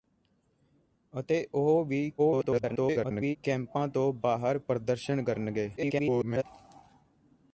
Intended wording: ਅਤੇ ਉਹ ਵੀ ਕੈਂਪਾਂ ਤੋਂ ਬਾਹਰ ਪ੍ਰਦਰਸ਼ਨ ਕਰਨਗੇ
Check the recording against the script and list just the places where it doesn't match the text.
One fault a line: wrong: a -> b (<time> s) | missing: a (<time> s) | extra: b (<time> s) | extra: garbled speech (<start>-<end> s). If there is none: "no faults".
extra: garbled speech (2.2-3.4 s)
extra: garbled speech (5.8-6.4 s)